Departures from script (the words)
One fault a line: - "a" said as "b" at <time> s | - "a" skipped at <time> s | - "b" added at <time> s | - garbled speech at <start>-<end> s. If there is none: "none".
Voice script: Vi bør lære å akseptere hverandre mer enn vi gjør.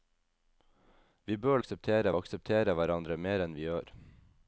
- "lære" said as "akseptere" at 1.6 s